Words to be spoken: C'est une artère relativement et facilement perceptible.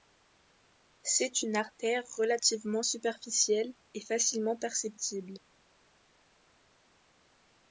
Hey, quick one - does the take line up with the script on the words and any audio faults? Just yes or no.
no